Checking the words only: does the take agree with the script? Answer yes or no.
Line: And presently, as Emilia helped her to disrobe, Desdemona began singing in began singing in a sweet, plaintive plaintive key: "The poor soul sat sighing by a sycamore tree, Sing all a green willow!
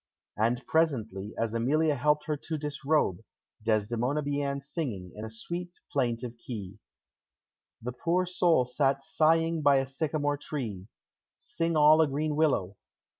no